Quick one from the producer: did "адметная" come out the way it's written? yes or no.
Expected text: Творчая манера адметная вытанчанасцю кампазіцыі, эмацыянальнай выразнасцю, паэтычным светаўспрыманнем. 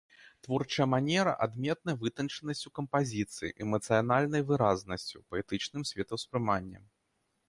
yes